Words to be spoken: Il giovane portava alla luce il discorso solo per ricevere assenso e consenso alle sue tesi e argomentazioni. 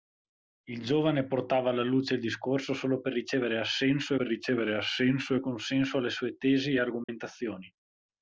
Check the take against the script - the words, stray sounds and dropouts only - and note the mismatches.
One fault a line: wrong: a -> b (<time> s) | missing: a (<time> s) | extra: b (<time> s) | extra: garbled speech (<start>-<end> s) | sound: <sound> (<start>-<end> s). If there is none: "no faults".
extra: per ricevere assenso (4.1 s)
sound: dropout (7.0-7.1 s)